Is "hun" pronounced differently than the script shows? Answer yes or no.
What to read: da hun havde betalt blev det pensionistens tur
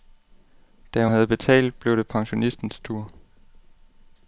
yes